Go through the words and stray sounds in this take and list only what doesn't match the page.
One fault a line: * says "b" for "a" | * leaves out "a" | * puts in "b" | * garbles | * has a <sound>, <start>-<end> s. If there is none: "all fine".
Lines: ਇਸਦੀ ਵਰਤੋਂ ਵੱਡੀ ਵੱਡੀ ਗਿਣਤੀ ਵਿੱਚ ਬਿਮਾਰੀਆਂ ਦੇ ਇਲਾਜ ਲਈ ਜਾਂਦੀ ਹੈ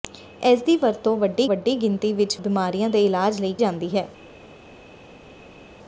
all fine